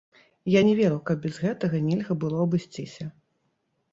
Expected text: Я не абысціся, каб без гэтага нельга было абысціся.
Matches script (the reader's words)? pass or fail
fail